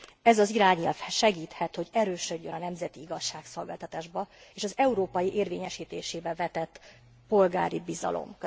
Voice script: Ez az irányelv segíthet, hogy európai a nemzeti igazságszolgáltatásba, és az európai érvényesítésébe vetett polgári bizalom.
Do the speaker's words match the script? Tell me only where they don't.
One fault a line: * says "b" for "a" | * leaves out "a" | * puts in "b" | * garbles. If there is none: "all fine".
* says "erősödjön" for "európai"